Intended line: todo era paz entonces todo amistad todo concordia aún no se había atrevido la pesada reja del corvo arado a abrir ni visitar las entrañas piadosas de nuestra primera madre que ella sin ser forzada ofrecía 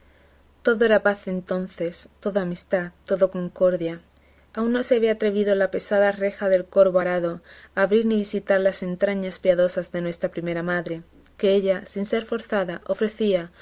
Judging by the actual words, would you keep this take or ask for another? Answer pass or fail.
pass